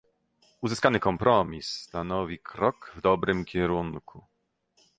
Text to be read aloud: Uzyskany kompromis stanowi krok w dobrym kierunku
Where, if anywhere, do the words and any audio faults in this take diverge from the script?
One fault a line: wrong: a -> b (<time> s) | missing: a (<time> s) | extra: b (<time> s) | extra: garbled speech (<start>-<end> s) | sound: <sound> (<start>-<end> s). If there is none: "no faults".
no faults